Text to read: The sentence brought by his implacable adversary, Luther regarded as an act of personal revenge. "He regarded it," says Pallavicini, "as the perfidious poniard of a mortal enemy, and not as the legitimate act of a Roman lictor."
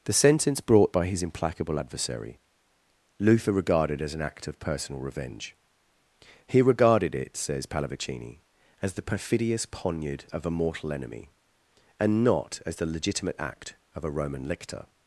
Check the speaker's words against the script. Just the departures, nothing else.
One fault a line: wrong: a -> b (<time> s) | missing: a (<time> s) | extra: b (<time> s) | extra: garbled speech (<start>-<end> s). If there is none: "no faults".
no faults